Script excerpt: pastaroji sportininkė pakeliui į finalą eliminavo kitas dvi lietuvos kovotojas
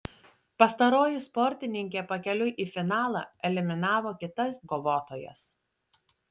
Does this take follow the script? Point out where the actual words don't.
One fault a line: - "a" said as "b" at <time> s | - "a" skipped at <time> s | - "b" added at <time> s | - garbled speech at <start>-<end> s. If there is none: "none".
- "dvi lietuvos" skipped at 4.6 s